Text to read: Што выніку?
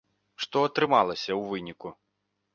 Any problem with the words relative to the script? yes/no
yes